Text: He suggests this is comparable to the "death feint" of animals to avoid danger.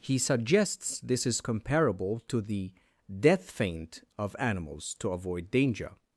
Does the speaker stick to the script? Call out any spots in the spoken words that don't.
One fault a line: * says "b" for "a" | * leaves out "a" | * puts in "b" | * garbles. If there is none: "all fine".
all fine